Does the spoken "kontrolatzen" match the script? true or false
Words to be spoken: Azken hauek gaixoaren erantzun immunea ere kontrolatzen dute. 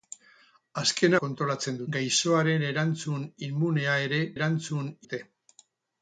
false